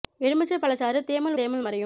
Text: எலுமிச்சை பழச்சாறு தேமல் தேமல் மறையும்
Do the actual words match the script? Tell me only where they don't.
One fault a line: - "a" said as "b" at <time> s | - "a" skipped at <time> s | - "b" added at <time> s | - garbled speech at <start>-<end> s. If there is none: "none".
none